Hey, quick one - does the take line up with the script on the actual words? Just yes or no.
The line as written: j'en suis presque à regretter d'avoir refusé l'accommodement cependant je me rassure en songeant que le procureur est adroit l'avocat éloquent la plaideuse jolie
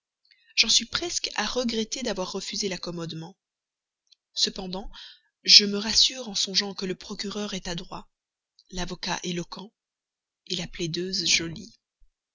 yes